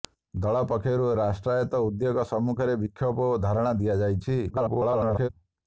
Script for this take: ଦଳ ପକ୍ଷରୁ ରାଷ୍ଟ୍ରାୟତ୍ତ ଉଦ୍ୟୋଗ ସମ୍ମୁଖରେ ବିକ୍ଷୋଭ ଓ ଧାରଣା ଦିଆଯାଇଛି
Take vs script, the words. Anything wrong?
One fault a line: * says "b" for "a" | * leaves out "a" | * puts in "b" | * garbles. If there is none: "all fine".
* garbles